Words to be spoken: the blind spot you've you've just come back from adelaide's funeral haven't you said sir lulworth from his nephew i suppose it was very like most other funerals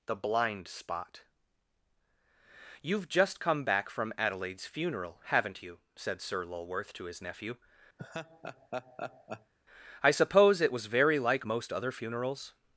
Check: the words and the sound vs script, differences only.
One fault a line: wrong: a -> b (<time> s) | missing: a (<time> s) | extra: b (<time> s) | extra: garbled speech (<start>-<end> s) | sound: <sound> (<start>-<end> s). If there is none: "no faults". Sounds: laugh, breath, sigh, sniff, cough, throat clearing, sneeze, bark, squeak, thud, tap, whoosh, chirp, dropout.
missing: you've (3.1 s)
wrong: from -> to (6.9 s)
sound: laugh (8.0-9.5 s)